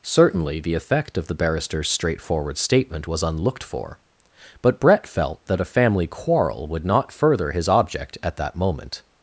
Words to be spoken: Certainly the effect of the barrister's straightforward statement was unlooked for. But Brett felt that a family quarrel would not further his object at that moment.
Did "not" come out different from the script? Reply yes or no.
no